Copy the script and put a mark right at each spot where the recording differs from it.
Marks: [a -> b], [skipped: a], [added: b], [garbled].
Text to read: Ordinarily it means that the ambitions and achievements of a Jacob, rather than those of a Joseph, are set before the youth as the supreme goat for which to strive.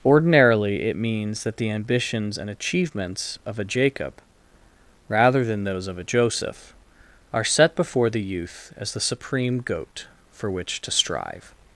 Ordinarily it means that the ambitions and achievements of a Jacob, rather than those of a Joseph, are set before the youth as the supreme goat for which to strive.